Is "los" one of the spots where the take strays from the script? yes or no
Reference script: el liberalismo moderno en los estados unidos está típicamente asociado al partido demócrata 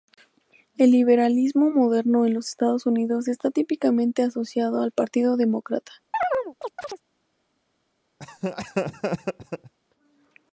no